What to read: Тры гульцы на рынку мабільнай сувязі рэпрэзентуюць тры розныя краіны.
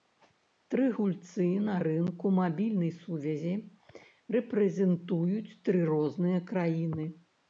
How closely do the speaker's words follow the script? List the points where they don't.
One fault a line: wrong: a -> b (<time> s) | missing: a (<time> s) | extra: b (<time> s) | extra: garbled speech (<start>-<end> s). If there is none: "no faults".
no faults